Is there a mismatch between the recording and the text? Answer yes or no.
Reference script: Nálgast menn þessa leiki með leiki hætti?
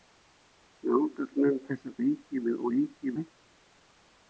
no